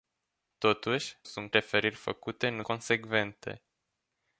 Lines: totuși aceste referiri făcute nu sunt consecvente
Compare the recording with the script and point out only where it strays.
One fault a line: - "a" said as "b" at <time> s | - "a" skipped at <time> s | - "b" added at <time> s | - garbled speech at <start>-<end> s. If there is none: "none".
- "aceste" said as "sunt" at 1.2 s
- "sunt" skipped at 2.6 s